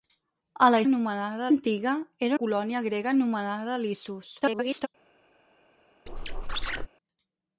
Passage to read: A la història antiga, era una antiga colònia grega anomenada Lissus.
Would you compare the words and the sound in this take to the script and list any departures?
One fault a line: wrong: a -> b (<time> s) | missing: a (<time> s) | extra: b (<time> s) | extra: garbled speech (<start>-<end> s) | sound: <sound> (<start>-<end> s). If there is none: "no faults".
wrong: història -> anomenada (0.9 s)
missing: una antiga (2.4 s)
extra: garbled speech (4.4-4.9 s)
sound: squeak (6.1-6.9 s)